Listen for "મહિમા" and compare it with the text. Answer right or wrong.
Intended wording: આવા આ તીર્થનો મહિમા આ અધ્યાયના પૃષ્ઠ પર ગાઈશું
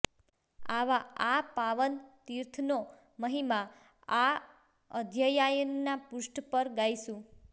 right